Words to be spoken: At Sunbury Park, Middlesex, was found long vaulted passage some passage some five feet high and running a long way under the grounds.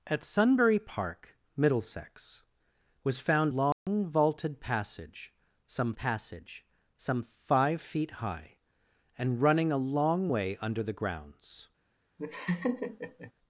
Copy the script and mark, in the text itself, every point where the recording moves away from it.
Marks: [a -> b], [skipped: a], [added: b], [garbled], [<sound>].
At Sunbury Park, Middlesex, was found long [dropout] vaulted passage some passage some five feet high and running a long way under the grounds. [laugh]